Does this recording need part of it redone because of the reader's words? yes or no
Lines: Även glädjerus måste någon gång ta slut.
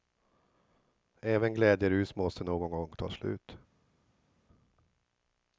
no